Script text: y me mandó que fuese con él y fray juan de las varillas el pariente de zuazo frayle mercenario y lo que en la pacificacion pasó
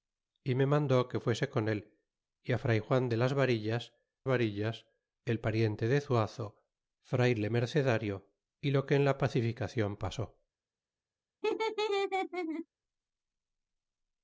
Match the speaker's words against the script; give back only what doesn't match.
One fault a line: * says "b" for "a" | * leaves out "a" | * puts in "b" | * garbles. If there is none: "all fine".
* puts in "varillas"